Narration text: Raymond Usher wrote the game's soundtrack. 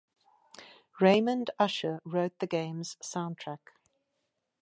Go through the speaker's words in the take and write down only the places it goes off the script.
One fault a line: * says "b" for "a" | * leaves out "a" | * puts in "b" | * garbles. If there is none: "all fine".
all fine